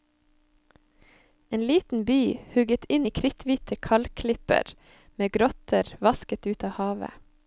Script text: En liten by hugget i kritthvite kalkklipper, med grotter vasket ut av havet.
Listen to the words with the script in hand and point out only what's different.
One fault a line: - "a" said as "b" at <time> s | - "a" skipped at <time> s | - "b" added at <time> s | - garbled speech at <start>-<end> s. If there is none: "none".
- "inn" added at 3.0 s